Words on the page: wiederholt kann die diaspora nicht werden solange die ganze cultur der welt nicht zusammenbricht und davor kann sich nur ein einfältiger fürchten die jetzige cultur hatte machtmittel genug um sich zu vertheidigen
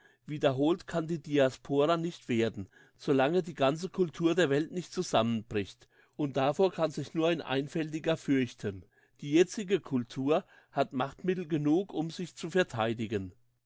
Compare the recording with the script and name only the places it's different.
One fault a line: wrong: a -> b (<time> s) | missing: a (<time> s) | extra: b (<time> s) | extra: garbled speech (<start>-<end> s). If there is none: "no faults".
wrong: hatte -> hat (10.7 s)